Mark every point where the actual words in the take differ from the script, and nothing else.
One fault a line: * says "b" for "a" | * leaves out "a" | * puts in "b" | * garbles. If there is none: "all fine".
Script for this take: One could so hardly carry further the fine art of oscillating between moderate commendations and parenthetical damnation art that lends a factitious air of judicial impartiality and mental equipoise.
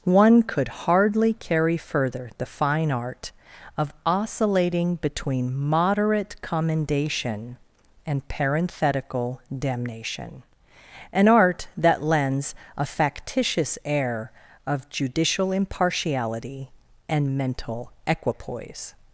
* leaves out "so"
* says "commendation" for "commendations"
* puts in "an"